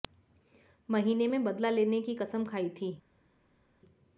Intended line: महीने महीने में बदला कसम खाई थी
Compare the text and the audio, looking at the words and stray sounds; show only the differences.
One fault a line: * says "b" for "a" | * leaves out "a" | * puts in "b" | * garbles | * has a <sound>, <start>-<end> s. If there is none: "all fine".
* leaves out "महीने"
* puts in "लेने की"